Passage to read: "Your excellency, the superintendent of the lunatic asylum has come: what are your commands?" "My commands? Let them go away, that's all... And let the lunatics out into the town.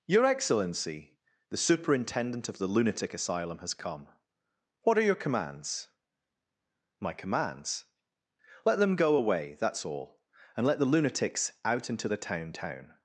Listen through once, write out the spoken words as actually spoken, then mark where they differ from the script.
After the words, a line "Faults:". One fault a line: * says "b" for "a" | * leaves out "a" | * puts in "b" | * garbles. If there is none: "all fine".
"Your excellency, the superintendent of the lunatic asylum has come: what are your commands?" "My commands? Let them go away, that's all... And let the lunatics out into the town town.
Faults:
* puts in "town"